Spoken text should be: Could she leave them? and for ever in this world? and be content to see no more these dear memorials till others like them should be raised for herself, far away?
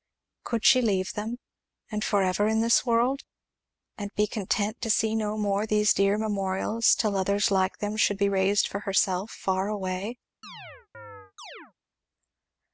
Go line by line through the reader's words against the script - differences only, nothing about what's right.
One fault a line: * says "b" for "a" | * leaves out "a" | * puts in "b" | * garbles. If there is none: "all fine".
all fine